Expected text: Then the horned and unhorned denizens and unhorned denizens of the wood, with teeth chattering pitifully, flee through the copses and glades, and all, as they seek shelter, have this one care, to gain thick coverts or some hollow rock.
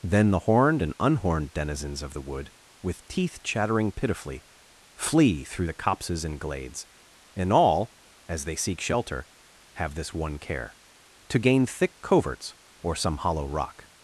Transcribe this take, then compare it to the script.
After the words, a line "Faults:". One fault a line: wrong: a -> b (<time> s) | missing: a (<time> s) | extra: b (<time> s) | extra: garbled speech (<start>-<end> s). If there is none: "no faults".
Then the horned and unhorned denizens of the wood, with teeth chattering pitifully, flee through the copses and glades, and all, as they seek shelter, have this one care, to gain thick coverts or some hollow rock.
Faults:
missing: and unhorned denizens (2.0 s)